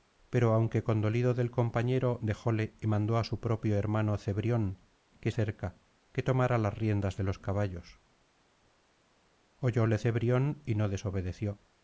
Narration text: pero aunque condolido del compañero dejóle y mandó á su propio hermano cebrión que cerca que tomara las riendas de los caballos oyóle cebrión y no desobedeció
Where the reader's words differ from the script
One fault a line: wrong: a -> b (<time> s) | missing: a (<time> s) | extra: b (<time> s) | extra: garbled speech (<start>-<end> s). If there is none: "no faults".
no faults